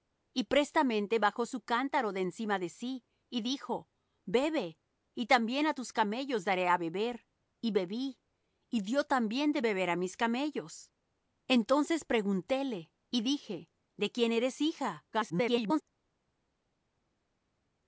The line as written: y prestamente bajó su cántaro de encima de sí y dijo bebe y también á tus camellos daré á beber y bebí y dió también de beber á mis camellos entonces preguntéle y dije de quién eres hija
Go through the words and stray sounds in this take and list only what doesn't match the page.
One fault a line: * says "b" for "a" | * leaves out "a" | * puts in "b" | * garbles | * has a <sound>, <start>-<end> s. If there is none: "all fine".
* garbles